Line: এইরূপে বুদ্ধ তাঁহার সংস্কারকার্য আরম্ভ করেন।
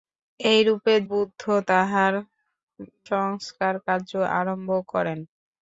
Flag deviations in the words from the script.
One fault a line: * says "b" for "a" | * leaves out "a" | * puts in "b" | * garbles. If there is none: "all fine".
all fine